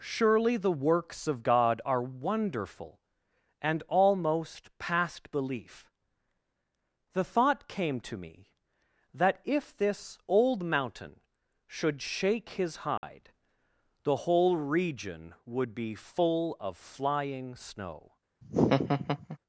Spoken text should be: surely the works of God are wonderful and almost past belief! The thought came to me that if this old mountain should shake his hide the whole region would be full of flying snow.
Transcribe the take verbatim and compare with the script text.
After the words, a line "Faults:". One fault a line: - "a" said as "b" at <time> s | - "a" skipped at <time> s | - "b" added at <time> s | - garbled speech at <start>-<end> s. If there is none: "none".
surely the works of God are wonderful and almost past belief! The thought came to me that if this old mountain should shake his hide the whole region would be full of flying snow.
Faults:
none